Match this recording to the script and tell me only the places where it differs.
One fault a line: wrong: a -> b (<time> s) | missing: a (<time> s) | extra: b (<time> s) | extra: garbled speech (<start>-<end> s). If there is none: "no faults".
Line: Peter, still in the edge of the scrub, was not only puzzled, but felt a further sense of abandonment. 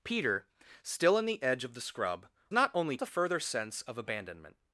missing: was (2.3 s)
missing: puzzled but felt (3.0 s)